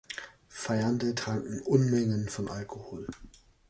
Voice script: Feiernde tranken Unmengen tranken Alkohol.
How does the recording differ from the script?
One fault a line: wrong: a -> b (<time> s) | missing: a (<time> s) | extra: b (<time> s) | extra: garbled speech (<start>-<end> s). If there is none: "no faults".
wrong: tranken -> von (2.3 s)